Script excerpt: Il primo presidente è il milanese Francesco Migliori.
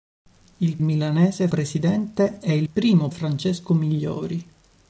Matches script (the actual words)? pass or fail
fail